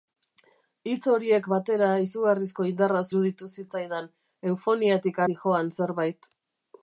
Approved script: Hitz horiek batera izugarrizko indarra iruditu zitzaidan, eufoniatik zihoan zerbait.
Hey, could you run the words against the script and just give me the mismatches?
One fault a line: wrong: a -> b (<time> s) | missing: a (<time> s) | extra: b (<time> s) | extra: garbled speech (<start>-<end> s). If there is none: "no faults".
no faults